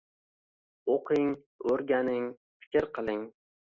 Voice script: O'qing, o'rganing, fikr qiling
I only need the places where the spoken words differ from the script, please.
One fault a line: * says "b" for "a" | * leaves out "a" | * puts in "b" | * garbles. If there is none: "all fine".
all fine